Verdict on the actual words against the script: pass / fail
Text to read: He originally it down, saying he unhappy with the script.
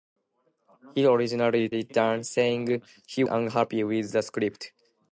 pass